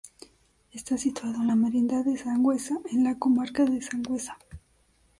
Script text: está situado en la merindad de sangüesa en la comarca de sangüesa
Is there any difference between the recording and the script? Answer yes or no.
no